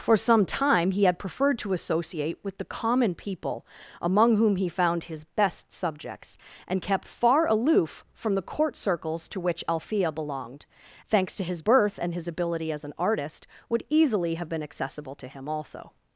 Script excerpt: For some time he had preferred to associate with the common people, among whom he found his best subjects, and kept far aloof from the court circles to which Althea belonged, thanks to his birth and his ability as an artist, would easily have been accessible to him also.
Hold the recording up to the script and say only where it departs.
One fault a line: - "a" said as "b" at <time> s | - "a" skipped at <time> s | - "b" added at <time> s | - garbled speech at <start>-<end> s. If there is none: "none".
none